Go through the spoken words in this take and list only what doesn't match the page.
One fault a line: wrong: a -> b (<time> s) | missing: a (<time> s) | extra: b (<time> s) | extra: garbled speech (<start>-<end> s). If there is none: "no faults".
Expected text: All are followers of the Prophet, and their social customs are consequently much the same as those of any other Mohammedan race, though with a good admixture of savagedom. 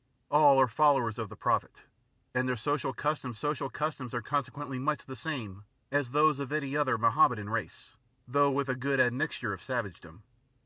extra: social customs (3.3 s)